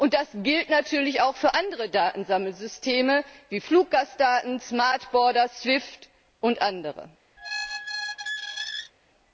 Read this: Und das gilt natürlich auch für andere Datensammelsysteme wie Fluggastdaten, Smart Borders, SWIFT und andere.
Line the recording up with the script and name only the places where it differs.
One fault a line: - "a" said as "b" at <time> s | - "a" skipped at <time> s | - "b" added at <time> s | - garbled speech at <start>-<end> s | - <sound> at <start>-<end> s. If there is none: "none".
- squeak at 7.4-8.9 s